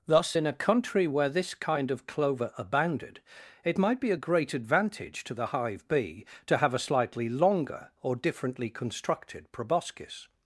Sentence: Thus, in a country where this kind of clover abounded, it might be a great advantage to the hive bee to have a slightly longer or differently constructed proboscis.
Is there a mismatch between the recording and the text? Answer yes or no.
no